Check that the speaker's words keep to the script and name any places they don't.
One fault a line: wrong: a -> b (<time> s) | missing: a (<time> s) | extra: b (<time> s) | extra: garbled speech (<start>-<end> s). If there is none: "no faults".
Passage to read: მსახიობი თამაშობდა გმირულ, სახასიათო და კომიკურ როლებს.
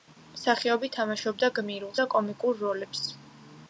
missing: სახასიათო (1.9 s)